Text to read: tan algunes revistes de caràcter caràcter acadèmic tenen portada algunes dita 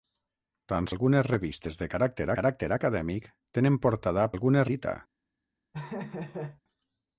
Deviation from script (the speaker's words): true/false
false